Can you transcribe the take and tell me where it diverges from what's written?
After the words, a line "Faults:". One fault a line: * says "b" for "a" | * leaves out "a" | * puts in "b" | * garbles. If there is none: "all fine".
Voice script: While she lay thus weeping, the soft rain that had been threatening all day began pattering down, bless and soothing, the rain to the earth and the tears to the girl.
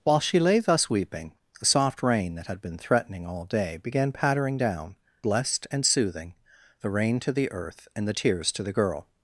While she lay thus weeping, the soft rain that had been threatening all day began pattering down, blessed and soothing, the rain to the earth and the tears to the girl.
Faults:
* says "blessed" for "bless"